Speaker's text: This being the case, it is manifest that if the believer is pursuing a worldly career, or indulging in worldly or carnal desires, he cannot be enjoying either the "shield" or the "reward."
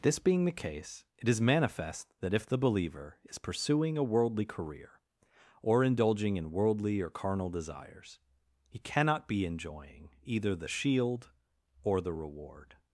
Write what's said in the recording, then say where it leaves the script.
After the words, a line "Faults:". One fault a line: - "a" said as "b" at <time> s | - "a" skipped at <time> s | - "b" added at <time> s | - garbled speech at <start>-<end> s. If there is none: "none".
This being the case, it is manifest that if the believer is pursuing a worldly career, or indulging in worldly or carnal desires, he cannot be enjoying either the "shield" or the "reward."
Faults:
none